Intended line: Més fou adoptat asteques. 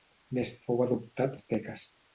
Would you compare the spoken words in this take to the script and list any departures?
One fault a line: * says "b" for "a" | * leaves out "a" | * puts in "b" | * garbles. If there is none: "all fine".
all fine